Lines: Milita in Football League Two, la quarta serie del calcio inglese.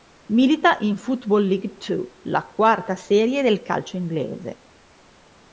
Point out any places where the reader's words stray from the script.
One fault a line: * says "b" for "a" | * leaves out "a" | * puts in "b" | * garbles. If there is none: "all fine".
all fine